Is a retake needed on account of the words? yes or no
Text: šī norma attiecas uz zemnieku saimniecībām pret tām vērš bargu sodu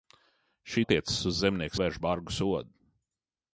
yes